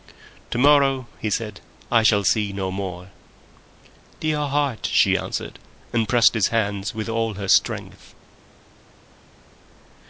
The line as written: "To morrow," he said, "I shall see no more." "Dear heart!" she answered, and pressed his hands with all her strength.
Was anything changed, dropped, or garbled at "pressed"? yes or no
no